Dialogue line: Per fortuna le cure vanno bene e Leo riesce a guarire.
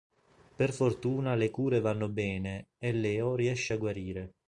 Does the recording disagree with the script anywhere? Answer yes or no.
no